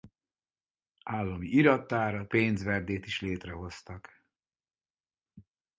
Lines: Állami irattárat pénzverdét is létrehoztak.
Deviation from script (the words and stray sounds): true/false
false